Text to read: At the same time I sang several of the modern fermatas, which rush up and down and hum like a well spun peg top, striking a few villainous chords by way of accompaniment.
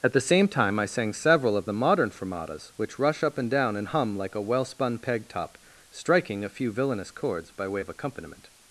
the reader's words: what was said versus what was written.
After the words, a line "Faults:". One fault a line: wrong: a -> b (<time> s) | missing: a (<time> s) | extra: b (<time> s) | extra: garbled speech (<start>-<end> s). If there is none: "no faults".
At the same time I sang several of the modern fermatas, which rush up and down and hum like a well spun peg top, striking a few villainous chords by way of accompaniment.
Faults:
no faults